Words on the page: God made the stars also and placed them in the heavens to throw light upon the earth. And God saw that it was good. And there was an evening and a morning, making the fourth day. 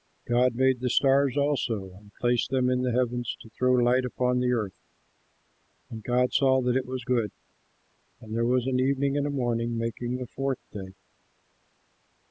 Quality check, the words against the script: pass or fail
pass